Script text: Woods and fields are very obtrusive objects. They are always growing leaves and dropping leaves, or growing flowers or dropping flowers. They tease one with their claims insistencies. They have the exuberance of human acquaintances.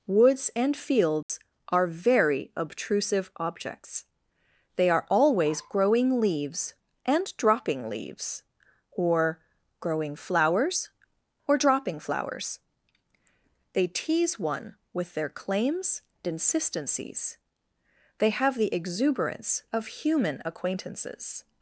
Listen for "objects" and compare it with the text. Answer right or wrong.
right